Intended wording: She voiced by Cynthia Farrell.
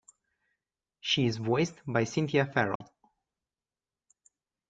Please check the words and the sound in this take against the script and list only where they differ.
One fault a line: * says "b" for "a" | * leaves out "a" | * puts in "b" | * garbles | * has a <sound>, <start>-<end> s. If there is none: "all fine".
* puts in "is"
* has a dropout, 2.8-2.8 s